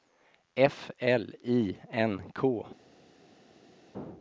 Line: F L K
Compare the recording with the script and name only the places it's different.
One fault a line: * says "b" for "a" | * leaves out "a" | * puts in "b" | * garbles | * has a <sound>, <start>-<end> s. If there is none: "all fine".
* puts in "I N"